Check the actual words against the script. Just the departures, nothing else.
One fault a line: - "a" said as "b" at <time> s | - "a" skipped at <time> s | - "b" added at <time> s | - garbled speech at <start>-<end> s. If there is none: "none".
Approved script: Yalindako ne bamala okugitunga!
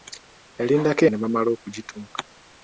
none